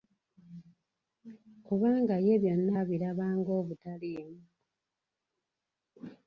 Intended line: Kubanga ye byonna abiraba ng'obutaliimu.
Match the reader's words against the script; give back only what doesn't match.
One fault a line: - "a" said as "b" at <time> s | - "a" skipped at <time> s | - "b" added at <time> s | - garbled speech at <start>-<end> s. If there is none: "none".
none